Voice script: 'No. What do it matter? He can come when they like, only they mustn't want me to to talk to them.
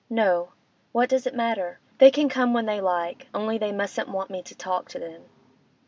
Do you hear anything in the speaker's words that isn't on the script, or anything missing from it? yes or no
yes